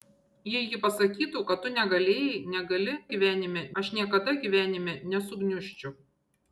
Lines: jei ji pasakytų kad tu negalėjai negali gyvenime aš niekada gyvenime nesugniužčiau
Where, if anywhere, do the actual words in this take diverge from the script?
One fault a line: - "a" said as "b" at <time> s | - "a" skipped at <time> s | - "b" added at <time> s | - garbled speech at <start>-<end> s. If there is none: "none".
none